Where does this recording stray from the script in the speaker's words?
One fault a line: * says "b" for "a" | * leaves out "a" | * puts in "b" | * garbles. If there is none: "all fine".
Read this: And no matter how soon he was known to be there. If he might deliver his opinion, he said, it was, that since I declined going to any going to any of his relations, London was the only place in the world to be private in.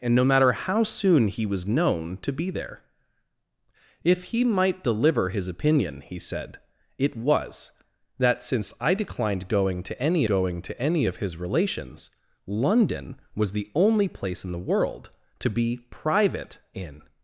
all fine